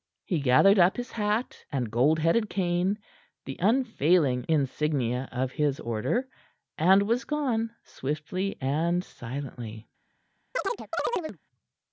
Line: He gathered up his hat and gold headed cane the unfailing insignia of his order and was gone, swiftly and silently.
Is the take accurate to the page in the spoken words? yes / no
yes